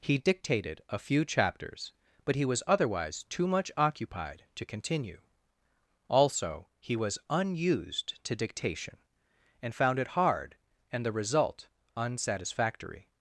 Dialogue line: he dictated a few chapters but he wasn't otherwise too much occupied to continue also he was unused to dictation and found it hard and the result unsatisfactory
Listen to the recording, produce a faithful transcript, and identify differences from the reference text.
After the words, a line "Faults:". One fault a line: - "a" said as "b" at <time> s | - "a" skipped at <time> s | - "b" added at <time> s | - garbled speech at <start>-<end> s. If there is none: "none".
he dictated a few chapters but he was otherwise too much occupied to continue also he was unused to dictation and found it hard and the result unsatisfactory
Faults:
- "wasn't" said as "was" at 2.4 s